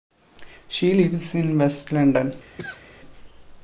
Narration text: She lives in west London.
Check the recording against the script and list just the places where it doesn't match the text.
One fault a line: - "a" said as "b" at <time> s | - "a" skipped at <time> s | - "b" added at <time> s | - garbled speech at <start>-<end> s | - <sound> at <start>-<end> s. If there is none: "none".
- cough at 2.6-2.9 s